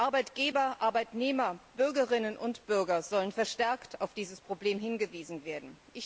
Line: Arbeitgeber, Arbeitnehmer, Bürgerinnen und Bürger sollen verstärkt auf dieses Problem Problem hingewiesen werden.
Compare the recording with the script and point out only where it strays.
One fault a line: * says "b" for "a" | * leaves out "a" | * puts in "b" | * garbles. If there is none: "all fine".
* leaves out "Problem"